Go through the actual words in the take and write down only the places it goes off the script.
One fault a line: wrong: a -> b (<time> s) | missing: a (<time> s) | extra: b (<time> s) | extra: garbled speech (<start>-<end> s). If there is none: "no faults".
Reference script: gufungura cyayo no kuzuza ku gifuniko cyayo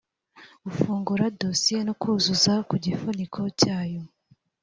wrong: cyayo -> dosiye (1.4 s)